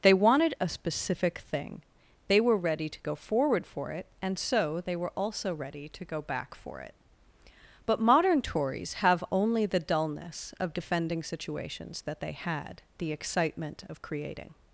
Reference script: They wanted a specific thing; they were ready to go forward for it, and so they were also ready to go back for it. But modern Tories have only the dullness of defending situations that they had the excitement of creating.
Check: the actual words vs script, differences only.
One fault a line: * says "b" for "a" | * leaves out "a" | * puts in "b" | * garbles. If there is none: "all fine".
all fine